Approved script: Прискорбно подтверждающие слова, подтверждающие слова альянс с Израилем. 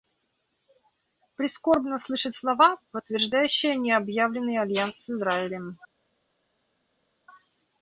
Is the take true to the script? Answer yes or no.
no